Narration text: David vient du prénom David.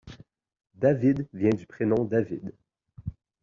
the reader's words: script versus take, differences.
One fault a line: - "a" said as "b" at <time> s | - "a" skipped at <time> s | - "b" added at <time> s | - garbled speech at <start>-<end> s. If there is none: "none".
none